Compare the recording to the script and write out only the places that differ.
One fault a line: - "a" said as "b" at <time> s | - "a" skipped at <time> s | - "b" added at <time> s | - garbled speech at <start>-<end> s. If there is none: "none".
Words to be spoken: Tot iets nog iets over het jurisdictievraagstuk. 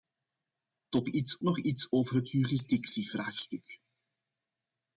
none